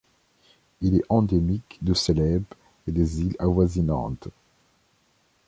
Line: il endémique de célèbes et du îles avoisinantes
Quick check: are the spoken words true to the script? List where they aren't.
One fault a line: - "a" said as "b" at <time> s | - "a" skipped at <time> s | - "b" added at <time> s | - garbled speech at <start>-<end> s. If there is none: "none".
- "est" added at 0.9 s
- "du" said as "des" at 2.9 s